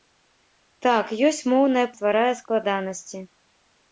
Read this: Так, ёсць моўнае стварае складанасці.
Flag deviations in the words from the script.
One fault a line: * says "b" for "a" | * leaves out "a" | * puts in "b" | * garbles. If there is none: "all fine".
all fine